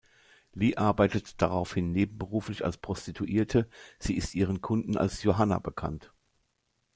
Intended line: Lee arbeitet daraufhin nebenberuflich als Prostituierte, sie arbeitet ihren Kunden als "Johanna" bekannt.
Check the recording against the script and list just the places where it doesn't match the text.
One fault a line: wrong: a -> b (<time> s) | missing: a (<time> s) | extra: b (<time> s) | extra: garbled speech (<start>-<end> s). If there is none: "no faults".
wrong: arbeitet -> ist (4.2 s)